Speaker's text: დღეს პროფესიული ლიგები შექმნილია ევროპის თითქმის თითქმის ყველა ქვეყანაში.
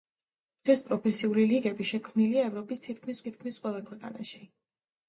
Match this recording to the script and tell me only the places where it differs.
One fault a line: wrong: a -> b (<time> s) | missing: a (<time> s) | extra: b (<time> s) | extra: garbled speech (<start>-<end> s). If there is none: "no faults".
no faults